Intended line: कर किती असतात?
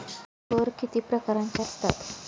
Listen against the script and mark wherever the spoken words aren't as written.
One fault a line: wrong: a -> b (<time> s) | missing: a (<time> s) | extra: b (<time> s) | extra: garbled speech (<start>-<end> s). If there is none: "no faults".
extra: प्रकारांचे (1.0 s)